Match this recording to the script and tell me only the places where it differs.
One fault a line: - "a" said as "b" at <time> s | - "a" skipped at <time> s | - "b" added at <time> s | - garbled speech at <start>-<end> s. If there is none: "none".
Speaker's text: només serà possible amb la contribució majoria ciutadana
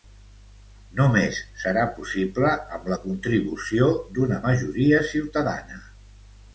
- "d'una" added at 4.2 s